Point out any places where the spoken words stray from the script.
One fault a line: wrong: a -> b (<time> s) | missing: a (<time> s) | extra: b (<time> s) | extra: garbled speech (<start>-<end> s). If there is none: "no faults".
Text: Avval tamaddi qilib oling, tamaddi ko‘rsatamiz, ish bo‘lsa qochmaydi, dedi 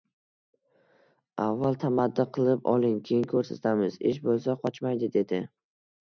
wrong: tamaddi -> keyin (3.1 s)